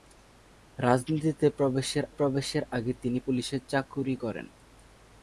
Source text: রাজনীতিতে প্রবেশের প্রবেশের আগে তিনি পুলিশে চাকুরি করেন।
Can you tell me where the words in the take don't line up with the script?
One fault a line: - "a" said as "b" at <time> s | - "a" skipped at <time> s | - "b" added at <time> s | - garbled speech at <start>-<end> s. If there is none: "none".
none